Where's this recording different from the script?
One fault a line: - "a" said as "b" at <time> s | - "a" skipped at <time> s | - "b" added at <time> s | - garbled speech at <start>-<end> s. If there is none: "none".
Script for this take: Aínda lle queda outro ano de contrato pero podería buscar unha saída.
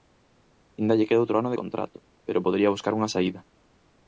none